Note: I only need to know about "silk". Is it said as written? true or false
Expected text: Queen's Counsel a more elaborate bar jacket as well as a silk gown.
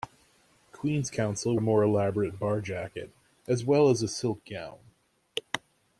true